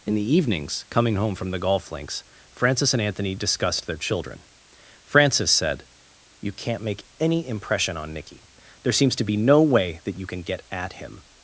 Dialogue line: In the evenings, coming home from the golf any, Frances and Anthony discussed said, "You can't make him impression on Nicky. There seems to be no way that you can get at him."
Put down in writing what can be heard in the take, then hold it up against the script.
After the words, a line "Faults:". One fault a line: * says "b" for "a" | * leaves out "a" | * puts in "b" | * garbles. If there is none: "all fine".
In the evenings, coming home from the golf links, Frances and Anthony discussed their children. Frances said, "You can't make any impression on Nicky. There seems to be no way that you can get at him."
Faults:
* says "links" for "any"
* puts in "their children Frances"
* says "any" for "him"